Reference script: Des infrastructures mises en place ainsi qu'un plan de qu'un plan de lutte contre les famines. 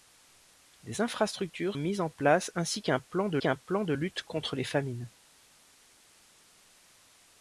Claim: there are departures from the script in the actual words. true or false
false